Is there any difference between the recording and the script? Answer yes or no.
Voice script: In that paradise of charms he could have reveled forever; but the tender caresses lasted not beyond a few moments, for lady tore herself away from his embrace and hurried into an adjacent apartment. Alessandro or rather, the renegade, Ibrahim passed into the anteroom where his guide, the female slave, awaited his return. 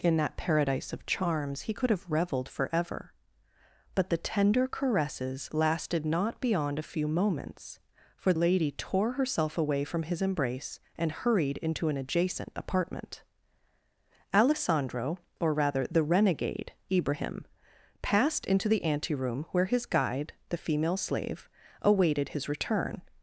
no